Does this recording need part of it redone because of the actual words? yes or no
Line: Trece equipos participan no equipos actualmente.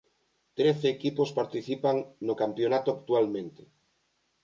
yes